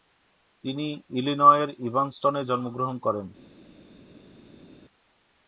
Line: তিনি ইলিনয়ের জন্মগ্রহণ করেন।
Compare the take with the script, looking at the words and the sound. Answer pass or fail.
fail